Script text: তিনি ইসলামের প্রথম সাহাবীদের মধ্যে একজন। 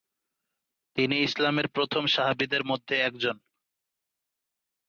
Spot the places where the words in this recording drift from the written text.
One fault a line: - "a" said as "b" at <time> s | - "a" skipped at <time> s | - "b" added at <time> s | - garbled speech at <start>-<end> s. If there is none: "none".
none